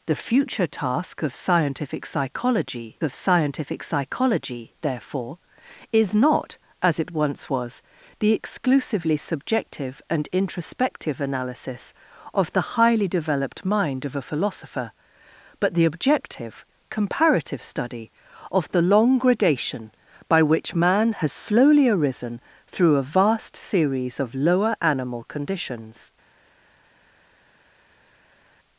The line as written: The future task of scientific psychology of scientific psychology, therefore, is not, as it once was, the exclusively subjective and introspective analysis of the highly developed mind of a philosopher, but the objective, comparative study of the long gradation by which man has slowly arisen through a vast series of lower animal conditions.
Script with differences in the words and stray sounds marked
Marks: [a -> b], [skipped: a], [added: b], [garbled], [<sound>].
The future task of scientific psychology of scientific psychology, therefore, is not, as it once was, the exclusively subjective and introspective analysis of the highly developed mind of a philosopher, but the objective, comparative study of the long gradation by which man has slowly arisen through a vast series of lower animal conditions.